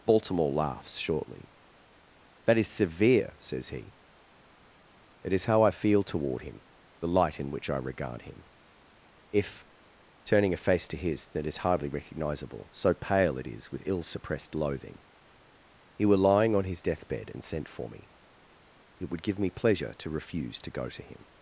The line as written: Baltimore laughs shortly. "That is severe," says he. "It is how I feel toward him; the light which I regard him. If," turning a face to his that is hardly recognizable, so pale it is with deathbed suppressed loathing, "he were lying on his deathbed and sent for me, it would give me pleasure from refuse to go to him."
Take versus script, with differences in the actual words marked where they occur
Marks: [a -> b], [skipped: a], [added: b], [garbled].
Baltimore laughs shortly. "That is severe," says he. "It is how I feel toward him; the light [added: in] which I regard him. If," turning a face to his that is hardly recognizable, so pale it is with [deathbed -> ill] suppressed loathing, "he were lying on his deathbed and sent for me, it would give me pleasure [from -> to] refuse to go to him."